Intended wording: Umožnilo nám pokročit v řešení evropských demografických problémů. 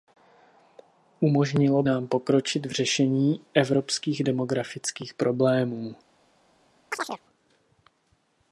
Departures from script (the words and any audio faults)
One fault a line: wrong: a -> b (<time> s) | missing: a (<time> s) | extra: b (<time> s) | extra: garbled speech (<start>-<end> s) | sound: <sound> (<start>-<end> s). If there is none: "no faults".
sound: chirp (6.9-7.2 s)